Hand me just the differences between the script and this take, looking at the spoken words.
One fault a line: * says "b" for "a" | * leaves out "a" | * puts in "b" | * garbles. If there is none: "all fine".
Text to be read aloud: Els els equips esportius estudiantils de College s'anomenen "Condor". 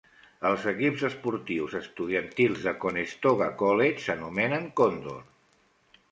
* leaves out "els"
* puts in "Conestoga"